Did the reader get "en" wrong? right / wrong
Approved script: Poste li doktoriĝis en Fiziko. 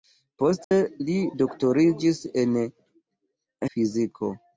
right